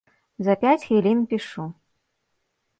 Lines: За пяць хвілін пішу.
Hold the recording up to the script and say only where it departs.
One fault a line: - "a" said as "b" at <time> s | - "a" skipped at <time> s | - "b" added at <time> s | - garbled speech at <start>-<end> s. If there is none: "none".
none